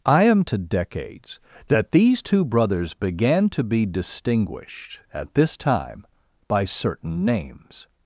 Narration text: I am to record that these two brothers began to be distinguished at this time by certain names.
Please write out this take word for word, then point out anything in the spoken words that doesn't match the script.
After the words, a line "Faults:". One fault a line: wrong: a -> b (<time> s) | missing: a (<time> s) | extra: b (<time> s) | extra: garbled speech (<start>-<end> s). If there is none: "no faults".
I am to decades that these two brothers began to be distinguished at this time by certain names.
Faults:
wrong: record -> decades (0.6 s)